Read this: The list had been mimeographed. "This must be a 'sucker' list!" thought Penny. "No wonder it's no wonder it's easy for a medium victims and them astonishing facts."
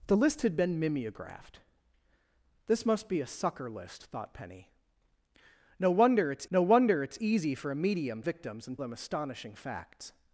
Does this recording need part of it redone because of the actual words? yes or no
no